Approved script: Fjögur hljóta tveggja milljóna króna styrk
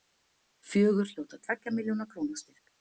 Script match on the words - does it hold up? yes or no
yes